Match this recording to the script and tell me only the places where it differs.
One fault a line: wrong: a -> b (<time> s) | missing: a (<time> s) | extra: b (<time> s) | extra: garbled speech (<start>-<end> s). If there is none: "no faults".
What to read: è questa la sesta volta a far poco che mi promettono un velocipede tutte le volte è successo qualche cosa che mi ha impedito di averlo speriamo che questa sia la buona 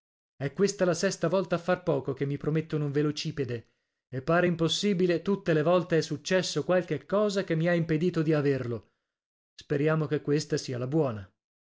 extra: e pare impossibile (4.1 s)